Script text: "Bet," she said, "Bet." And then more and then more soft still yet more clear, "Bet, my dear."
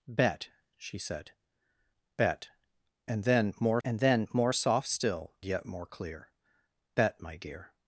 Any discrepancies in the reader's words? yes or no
no